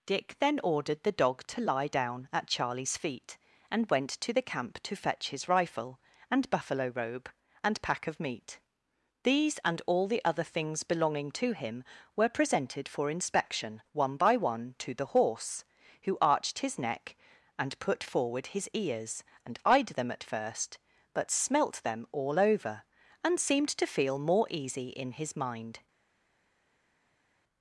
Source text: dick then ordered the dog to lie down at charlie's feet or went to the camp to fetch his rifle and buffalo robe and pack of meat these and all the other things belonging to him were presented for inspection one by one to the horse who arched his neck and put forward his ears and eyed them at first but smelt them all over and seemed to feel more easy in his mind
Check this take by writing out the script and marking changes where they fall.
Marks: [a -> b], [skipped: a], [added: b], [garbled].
dick then ordered the dog to lie down at charlie's feet [or -> and] went to the camp to fetch his rifle and buffalo robe and pack of meat these and all the other things belonging to him were presented for inspection one by one to the horse who arched his neck and put forward his ears and eyed them at first but smelt them all over and seemed to feel more easy in his mind